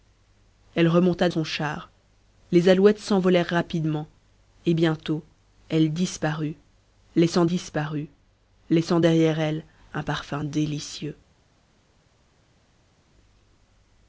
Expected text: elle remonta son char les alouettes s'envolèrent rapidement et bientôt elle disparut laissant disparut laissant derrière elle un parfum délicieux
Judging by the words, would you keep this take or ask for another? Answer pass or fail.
pass